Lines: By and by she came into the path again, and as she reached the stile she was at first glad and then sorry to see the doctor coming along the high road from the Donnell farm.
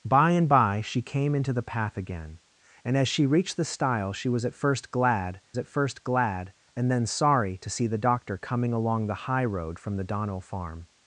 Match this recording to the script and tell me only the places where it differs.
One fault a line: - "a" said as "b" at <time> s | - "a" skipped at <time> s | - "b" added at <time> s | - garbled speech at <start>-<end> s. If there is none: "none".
- "at first glad" added at 5.6 s